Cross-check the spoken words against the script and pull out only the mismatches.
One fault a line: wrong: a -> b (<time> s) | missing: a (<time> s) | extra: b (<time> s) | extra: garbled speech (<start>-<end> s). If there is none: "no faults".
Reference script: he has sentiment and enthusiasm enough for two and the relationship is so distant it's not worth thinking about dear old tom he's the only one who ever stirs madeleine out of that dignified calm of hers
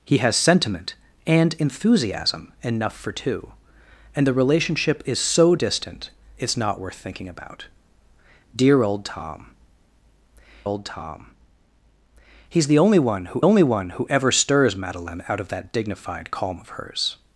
extra: old tom (10.6 s)
extra: only one who (13.4 s)